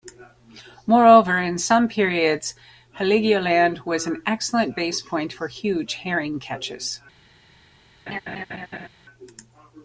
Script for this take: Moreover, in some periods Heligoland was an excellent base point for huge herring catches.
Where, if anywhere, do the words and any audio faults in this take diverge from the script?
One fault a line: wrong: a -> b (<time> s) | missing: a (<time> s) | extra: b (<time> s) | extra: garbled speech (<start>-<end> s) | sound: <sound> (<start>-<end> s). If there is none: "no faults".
sound: laugh (8.1-8.9 s)